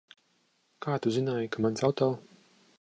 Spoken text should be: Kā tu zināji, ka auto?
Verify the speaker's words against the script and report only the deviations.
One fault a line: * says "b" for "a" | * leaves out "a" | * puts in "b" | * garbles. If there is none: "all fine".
* puts in "mans"